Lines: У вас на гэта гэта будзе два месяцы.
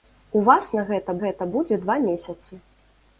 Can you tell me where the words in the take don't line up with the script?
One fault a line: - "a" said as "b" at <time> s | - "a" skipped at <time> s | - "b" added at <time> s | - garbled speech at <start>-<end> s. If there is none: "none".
none